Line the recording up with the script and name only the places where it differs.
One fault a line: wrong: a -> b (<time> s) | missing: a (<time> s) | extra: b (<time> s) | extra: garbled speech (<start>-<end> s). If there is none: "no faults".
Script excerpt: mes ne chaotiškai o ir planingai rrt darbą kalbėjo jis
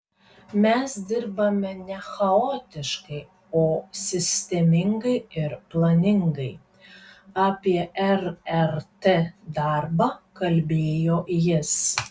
extra: dirbame (1.1 s)
extra: sistemingai (4.0 s)
extra: apie (7.5 s)